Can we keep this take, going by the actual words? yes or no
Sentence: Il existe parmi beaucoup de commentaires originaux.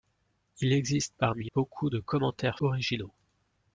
yes